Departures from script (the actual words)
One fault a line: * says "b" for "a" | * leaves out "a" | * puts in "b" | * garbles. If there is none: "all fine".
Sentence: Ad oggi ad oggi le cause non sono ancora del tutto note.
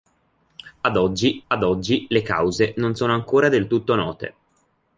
all fine